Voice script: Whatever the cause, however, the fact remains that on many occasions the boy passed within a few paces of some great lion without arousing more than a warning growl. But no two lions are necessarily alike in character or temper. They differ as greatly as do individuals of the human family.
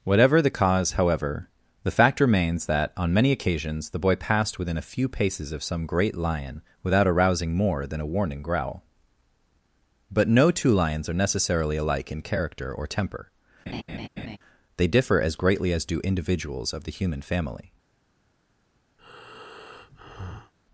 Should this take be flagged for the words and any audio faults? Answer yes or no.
yes